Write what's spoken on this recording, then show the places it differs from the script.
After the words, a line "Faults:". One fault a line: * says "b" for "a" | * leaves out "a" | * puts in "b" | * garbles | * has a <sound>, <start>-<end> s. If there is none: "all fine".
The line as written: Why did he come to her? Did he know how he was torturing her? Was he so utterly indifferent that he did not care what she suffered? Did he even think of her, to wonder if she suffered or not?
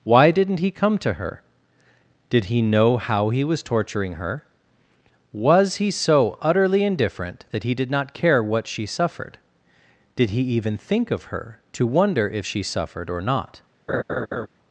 Why didn't he come to her? Did he know how he was torturing her? Was he so utterly indifferent that he did not care what she suffered? Did he even think of her, to wonder if she suffered or not?
Faults:
* says "didn't" for "did"
* has a laugh, 13.9-14.5 s